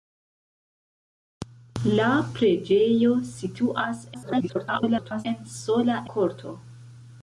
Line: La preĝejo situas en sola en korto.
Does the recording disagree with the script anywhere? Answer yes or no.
yes